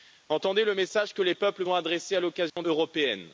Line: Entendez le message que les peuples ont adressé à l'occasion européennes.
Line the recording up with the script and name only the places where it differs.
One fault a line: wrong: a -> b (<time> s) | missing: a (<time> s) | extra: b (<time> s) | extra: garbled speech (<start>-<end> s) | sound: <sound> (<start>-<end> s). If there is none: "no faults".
sound: dropout (2.5-2.6 s)